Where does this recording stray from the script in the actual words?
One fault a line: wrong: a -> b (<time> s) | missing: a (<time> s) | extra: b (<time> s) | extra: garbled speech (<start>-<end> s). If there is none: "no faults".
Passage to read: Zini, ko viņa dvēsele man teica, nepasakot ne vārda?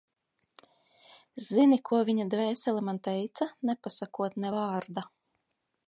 no faults